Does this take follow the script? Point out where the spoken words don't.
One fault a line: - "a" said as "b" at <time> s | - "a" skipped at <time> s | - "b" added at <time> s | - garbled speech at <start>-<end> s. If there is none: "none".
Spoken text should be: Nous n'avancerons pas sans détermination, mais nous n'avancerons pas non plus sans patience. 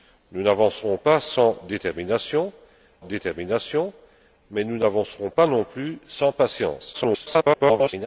- "détermination" added at 3.1 s
- garbled speech at 6.9-8.1 s